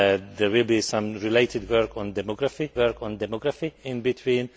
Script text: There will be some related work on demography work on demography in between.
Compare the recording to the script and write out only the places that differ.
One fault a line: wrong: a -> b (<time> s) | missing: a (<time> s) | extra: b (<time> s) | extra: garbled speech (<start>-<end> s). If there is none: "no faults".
no faults